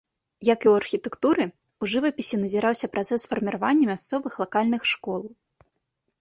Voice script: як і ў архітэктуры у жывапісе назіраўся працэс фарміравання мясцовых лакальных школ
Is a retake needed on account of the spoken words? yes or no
no